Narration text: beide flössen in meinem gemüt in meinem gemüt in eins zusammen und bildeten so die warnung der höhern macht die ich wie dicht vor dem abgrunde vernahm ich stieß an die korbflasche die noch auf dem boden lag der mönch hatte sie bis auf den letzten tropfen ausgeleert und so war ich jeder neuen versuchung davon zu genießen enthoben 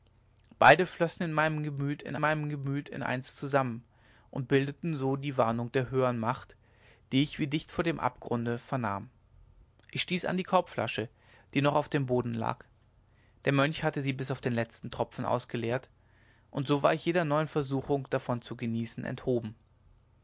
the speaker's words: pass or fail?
pass